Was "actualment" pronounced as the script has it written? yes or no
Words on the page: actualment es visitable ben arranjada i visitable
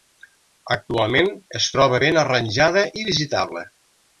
yes